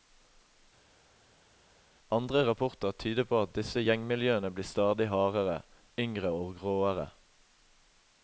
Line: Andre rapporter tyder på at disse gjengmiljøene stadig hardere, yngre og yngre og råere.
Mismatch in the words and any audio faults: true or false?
true